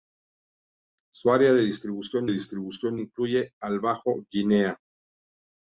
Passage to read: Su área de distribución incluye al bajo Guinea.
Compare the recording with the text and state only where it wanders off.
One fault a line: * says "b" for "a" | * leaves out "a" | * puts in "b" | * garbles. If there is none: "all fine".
* puts in "distribución"